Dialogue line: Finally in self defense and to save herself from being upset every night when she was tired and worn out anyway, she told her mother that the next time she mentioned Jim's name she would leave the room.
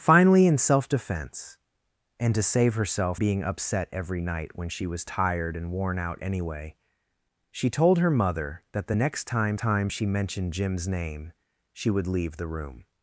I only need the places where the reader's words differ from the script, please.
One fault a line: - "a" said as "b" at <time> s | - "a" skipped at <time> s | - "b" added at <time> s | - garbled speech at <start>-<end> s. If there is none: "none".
- "from" skipped at 3.2 s
- "time" added at 9.6 s